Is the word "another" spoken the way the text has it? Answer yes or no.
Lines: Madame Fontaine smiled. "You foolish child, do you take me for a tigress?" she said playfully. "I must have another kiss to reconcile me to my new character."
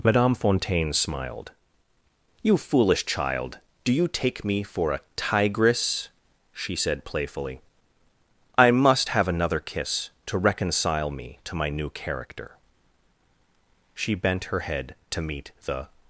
yes